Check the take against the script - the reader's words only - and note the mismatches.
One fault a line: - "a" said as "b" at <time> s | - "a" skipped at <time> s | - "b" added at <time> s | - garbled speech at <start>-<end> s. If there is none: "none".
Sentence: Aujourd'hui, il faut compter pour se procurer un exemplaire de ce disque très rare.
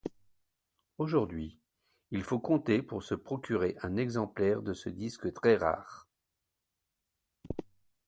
none